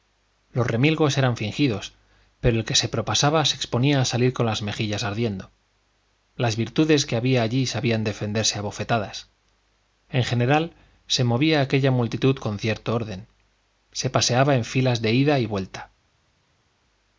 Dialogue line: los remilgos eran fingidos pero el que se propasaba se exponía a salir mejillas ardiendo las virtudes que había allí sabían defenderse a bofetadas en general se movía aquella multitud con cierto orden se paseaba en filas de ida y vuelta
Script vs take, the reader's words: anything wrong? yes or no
yes